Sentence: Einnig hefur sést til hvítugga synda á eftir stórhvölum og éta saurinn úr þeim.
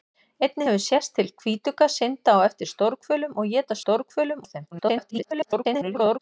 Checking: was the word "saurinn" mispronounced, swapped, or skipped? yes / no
yes